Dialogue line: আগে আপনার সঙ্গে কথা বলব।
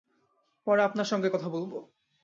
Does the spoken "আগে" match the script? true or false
false